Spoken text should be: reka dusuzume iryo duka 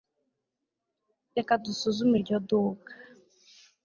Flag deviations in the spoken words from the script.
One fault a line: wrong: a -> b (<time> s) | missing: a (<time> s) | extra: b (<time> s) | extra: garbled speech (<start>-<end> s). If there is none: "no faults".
no faults